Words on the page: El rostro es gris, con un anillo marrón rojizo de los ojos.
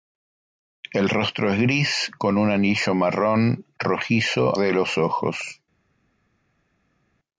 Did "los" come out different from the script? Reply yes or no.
no